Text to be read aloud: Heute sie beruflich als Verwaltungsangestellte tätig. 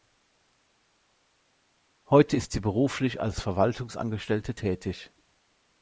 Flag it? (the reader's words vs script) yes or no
yes